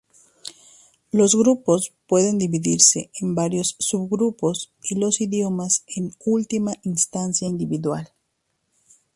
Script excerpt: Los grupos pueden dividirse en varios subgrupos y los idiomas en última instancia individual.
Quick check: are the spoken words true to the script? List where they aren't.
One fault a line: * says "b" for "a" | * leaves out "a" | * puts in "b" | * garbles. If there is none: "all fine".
all fine